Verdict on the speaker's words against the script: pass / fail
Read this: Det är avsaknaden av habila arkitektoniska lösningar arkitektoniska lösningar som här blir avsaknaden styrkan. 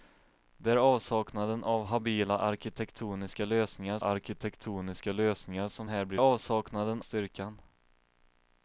pass